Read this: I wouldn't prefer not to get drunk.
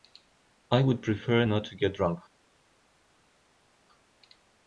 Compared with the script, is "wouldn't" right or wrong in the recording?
wrong